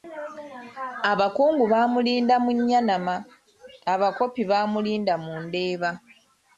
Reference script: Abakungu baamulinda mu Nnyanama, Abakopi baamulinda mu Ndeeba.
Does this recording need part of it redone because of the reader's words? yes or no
no